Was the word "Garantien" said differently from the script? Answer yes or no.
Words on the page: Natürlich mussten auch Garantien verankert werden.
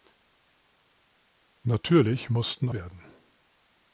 yes